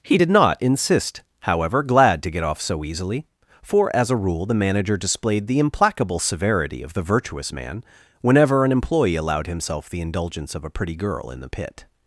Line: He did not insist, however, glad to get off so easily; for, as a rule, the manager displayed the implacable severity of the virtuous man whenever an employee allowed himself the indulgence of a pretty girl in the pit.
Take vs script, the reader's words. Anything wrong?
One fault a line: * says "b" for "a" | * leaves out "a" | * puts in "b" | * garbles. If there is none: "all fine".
all fine